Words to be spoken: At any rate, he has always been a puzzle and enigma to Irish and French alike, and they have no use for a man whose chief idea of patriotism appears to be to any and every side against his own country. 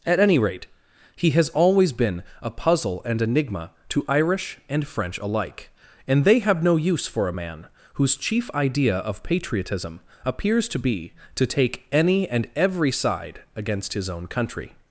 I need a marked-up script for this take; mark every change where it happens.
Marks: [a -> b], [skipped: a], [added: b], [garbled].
At any rate, he has always been a puzzle and enigma to Irish and French alike, and they have no use for a man whose chief idea of patriotism appears to be to [added: take] any and every side against his own country.